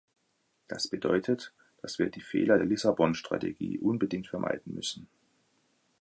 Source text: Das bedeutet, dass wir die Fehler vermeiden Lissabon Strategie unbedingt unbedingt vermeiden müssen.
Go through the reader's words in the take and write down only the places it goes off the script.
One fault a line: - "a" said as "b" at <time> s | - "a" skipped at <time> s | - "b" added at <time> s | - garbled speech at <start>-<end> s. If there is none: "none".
- "vermeiden" said as "der" at 2.6 s
- "unbedingt" skipped at 4.3 s